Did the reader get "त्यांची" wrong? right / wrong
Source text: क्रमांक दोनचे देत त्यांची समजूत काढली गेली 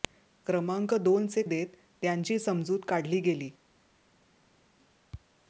right